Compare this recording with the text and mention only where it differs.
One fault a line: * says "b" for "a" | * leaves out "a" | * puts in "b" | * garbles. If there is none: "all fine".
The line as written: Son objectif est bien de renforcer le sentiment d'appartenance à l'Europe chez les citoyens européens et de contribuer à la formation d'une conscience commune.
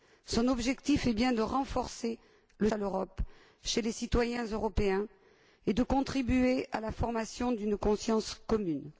* leaves out "sentiment d'appartenance"